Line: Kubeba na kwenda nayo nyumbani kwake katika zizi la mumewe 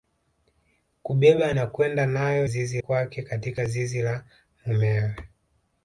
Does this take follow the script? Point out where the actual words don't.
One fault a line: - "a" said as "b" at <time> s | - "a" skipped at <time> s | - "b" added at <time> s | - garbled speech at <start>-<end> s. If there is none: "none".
- "nyumbani" said as "zizi" at 2.4 s